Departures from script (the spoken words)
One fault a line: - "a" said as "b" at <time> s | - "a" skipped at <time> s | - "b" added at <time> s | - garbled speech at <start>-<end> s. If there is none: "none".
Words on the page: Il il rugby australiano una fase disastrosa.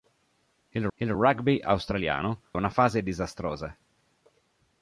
none